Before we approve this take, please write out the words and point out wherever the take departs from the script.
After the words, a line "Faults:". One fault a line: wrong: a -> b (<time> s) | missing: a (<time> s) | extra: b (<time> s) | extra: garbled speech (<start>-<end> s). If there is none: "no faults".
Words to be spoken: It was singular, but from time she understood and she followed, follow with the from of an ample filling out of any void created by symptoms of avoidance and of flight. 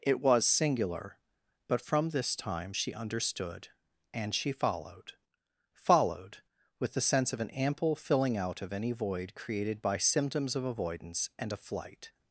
It was singular, but from this time she understood and she followed, followed with the sense of an ample filling out of any void created by symptoms of avoidance and of flight.
Faults:
extra: this (2.1 s)
wrong: follow -> followed (5.7 s)
wrong: from -> sense (7.0 s)